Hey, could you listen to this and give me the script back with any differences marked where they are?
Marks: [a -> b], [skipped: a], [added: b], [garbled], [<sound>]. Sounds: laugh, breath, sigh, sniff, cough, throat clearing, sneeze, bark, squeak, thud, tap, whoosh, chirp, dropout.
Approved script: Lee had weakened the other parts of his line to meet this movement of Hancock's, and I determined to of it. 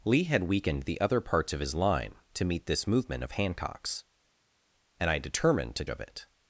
Lee had weakened the other parts of his line to meet this movement of Hancock's, and I determined to of it.